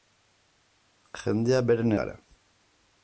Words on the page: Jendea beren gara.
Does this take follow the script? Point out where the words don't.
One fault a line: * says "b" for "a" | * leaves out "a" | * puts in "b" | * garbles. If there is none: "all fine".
all fine